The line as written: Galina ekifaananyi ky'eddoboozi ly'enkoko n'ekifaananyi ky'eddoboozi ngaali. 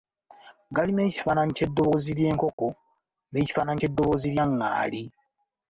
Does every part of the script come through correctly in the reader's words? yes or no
no